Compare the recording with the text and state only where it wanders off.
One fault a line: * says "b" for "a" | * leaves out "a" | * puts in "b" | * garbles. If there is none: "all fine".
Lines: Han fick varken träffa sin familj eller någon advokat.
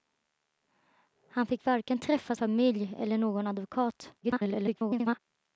* leaves out "sin"
* garbles